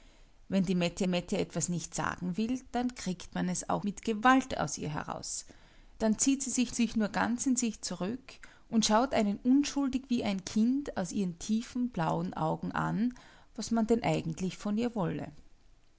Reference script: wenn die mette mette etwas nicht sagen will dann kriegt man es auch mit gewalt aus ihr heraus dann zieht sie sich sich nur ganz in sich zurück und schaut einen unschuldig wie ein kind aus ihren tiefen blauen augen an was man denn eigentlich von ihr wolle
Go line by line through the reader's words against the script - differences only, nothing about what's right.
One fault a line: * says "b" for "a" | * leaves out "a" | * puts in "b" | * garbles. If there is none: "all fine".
all fine